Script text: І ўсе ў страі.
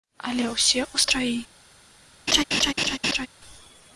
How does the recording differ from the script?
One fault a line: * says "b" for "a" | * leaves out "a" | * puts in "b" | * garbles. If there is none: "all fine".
* says "Але" for "І"